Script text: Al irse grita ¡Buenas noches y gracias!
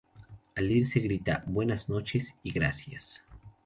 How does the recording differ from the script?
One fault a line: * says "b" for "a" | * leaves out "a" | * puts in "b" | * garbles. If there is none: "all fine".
all fine